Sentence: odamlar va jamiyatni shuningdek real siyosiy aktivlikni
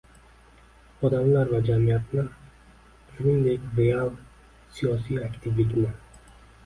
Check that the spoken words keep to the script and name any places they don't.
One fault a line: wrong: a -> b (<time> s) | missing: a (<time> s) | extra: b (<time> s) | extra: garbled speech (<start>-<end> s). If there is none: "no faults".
no faults